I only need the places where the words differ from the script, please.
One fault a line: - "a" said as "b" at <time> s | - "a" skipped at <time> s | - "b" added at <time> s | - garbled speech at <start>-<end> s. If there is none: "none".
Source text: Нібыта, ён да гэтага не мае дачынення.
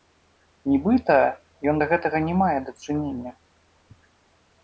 none